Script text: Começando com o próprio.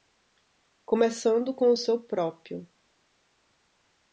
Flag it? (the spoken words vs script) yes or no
yes